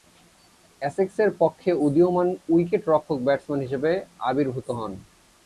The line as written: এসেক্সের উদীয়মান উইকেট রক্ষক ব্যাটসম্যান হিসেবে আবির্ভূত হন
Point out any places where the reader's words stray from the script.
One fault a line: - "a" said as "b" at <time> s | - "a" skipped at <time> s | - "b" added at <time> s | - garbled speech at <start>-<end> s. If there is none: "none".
- "পক্ষে" added at 1.4 s